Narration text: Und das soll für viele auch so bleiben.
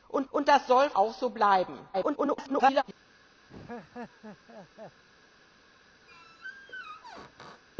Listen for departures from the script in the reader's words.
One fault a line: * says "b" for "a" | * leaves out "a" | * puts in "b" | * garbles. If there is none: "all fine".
* puts in "und"
* leaves out "für viele"
* garbles